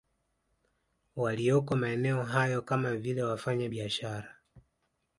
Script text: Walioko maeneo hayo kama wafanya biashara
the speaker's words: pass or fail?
fail